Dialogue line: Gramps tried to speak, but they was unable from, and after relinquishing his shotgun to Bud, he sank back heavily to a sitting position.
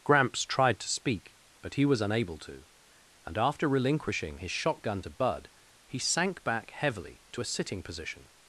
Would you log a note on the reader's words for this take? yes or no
yes